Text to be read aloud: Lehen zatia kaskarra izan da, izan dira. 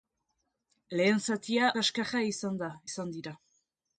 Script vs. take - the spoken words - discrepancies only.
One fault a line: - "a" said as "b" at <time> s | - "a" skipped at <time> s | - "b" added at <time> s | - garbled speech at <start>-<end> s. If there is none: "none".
none